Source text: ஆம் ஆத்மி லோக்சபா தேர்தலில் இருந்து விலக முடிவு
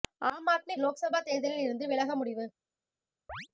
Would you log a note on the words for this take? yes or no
no